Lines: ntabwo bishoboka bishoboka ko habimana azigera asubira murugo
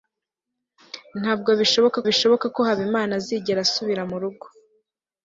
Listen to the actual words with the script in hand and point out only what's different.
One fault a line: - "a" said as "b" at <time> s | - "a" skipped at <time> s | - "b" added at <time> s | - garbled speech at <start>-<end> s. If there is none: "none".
none